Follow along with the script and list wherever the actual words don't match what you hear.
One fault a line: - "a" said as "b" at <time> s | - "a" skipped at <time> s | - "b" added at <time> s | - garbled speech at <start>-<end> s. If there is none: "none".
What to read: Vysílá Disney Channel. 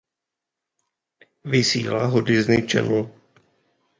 - "ho" added at 2.0 s